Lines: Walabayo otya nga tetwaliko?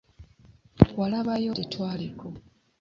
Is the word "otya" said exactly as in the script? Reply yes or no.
no